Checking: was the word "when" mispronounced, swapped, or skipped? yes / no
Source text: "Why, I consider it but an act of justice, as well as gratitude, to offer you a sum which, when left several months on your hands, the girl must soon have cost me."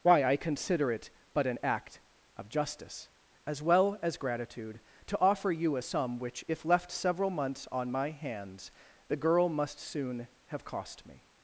yes